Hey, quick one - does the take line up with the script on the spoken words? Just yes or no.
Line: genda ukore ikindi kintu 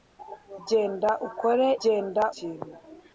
no